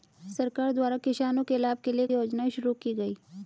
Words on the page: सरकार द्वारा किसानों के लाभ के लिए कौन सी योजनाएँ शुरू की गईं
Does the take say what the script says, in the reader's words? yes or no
no